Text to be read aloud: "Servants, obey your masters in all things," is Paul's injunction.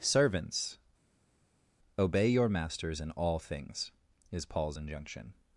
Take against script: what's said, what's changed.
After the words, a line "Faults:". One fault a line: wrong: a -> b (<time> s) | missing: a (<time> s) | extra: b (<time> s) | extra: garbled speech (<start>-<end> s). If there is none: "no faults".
"Servants, obey your masters in all things," is Paul's injunction.
Faults:
no faults